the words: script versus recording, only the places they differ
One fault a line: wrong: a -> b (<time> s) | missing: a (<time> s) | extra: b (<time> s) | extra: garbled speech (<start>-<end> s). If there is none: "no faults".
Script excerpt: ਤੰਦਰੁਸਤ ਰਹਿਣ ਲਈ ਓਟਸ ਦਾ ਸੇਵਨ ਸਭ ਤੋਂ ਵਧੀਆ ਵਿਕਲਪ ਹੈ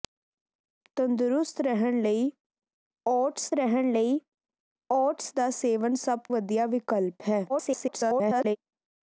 extra: ਰਹਿਣ ਲਈ ਓਟਸ (3.5 s)
missing: ਤੋਂ (6.2 s)
extra: garbled speech (7.5-8.6 s)